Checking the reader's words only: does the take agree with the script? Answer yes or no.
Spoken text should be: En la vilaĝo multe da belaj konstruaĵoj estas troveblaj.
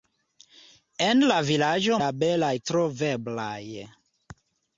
no